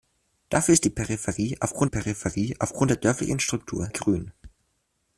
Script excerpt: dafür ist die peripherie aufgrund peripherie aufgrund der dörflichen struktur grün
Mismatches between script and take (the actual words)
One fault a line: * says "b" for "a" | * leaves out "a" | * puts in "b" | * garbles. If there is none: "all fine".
all fine